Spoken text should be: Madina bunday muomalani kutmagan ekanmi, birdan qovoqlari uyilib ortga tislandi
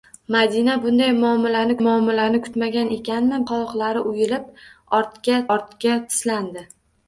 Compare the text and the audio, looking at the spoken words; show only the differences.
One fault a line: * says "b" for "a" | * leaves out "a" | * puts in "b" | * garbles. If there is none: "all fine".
* puts in "muomalani"
* leaves out "birdan"
* puts in "ortga"